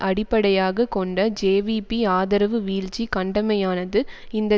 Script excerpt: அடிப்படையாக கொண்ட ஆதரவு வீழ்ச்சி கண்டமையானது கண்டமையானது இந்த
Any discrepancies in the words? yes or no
yes